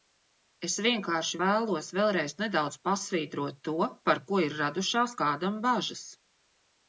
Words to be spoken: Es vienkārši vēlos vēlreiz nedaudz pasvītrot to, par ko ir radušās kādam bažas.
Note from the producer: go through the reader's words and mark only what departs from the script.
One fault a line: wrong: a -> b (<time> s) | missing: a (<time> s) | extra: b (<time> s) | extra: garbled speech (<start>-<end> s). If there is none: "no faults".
no faults